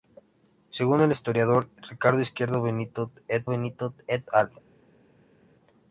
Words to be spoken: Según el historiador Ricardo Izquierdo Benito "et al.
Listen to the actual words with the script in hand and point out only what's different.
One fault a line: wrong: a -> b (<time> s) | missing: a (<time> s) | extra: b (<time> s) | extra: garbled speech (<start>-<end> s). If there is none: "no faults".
extra: Benito et (3.5 s)